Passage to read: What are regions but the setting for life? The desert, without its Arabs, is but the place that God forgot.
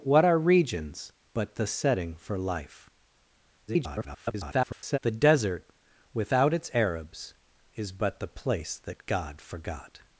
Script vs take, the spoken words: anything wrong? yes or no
yes